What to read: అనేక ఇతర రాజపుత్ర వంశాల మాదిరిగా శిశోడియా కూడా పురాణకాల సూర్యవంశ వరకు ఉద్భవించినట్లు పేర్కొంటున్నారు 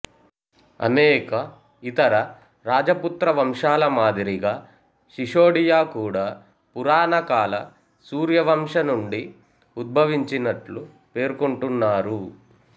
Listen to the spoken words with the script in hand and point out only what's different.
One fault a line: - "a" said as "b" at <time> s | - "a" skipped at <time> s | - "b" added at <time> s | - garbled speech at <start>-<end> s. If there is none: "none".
- "వరకు" said as "నుండి" at 8.9 s